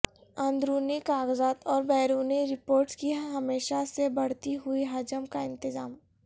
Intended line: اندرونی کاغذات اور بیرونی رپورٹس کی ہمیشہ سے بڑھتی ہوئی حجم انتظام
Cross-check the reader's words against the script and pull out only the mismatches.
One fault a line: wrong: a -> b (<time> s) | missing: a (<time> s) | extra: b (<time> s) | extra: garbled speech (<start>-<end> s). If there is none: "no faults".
extra: کا (5.3 s)